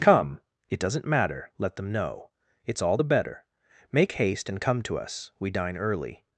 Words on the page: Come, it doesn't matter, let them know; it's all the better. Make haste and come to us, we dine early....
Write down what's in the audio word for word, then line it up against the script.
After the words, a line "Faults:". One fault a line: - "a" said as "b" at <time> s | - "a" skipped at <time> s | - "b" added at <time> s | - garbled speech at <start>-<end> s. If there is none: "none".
Come, it doesn't matter, let them know; it's all the better. Make haste and come to us, we dine early....
Faults:
none